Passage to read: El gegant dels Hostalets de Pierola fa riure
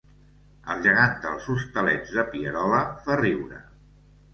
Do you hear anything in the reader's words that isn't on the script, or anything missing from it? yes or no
no